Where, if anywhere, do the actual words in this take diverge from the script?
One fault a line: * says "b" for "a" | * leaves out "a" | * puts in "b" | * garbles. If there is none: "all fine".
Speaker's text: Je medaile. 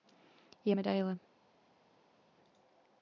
all fine